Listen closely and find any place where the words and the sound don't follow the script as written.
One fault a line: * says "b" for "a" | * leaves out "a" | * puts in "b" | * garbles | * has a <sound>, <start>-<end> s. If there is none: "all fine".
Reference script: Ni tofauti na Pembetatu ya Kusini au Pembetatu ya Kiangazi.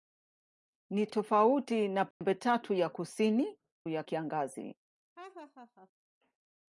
* has a dropout, 2.1-2.2 s
* leaves out "au Pembetatu"
* has a laugh, 5.2-5.9 s